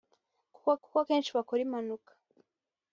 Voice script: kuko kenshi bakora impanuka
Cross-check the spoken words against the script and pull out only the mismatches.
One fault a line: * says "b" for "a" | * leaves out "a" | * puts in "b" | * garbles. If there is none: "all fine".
* puts in "kuko"